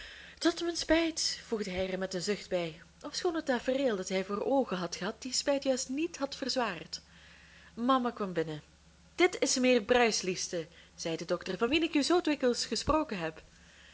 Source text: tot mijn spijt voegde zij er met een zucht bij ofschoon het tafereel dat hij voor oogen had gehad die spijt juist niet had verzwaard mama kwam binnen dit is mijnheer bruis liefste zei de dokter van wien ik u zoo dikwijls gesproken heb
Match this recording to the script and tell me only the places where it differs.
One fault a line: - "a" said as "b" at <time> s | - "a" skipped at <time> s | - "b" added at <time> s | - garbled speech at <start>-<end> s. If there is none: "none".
- "zij" said as "hij" at 1.7 s